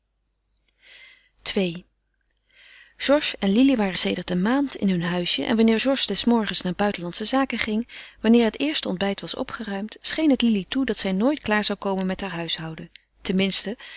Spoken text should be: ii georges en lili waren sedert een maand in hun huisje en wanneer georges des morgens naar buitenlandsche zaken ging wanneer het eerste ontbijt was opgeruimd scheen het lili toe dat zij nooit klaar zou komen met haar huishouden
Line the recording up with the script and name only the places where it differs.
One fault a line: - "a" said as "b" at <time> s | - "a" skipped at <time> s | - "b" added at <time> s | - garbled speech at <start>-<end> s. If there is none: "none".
none